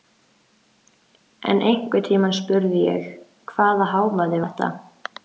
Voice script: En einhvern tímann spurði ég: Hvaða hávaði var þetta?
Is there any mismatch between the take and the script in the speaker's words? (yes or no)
yes